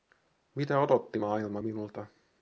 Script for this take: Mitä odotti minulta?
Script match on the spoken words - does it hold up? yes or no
no